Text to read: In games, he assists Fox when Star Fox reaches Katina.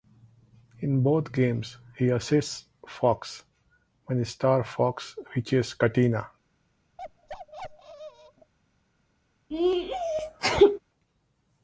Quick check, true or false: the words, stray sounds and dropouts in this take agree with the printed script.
false